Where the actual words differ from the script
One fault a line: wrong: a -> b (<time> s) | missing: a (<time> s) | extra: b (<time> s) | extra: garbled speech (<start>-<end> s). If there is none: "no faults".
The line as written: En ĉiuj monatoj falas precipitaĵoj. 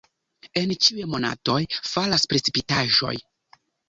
no faults